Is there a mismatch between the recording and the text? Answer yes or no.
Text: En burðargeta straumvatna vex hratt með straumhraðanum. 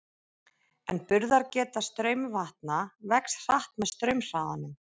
no